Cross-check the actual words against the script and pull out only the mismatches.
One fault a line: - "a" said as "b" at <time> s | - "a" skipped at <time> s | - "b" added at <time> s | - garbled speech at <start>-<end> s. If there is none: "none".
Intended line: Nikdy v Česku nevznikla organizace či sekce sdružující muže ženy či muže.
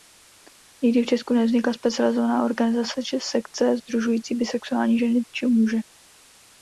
- "specializovaná" added at 1.7 s
- "muže" said as "bisexuální" at 4.3 s